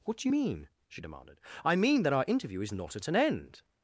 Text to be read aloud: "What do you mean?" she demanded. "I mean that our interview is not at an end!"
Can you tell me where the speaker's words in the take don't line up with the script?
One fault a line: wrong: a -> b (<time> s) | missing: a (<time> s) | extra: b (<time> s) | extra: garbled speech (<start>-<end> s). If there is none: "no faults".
no faults